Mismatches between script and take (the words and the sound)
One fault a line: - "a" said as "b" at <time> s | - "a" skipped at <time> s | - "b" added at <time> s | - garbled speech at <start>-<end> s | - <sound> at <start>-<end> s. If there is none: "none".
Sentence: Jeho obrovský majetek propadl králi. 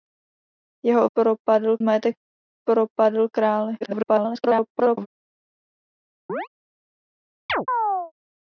- "obrovský" said as "propadl" at 1.2 s
- garbled speech at 3.8-5.1 s
- chirp at 6.3-6.5 s
- chirp at 7.5-8.1 s